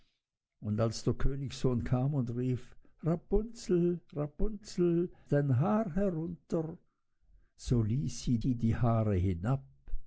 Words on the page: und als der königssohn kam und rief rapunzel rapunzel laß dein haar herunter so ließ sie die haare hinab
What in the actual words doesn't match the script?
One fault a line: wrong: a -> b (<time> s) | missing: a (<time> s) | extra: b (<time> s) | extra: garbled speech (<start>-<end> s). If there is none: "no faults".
missing: laß (5.1 s)
extra: sie (8.4 s)